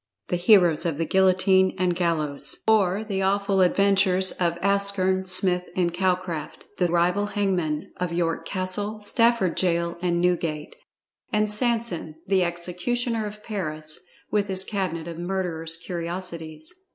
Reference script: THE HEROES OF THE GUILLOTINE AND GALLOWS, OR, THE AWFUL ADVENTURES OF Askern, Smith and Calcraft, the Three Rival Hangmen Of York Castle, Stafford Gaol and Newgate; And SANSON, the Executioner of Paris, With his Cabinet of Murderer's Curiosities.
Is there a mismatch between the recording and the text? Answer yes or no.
yes